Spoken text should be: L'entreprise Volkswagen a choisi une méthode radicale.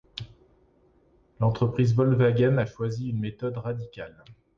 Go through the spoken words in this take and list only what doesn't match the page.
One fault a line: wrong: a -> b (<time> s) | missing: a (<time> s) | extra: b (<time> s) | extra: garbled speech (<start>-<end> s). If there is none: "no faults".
no faults